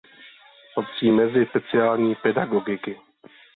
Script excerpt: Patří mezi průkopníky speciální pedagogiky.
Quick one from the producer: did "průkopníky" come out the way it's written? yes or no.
no